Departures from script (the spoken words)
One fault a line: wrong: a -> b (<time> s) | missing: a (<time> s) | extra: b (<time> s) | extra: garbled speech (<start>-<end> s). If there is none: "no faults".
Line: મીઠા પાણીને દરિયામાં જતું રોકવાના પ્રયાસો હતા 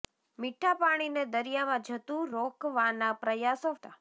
no faults